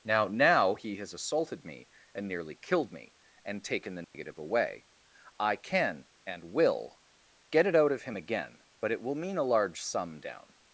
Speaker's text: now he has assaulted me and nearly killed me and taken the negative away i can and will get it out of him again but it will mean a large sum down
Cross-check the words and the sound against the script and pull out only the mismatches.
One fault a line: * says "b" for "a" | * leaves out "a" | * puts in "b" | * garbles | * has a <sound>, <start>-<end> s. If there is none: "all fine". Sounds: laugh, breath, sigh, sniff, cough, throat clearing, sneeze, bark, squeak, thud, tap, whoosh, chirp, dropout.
* puts in "now"
* has a dropout, 4.0-4.1 s